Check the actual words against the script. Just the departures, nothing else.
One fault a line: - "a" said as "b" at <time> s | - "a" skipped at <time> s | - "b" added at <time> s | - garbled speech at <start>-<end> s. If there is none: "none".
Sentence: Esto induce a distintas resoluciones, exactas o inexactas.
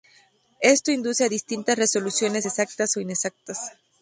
none